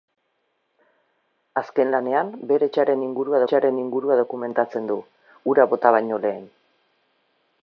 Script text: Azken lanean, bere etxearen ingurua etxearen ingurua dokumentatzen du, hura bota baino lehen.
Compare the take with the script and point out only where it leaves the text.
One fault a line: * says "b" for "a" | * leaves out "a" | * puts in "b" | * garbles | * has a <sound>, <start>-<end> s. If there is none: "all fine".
all fine